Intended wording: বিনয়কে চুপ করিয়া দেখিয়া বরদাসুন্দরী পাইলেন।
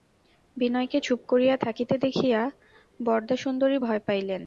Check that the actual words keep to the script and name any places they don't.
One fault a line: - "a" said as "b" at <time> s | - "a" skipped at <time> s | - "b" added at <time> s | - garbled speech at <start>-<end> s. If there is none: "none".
- "থাকিতে" added at 1.6 s
- "ভয়" added at 3.8 s